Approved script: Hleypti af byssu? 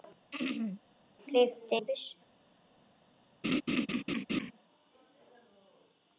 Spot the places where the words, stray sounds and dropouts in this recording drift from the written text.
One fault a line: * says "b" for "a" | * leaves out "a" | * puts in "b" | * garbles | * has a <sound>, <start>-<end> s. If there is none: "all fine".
* has a throat clearing, 0.3-0.8 s
* has a laugh, 3.4-4.5 s